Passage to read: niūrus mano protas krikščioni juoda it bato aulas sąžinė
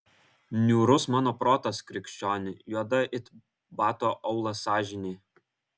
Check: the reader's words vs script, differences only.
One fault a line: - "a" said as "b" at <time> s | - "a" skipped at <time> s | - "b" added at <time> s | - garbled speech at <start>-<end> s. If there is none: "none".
none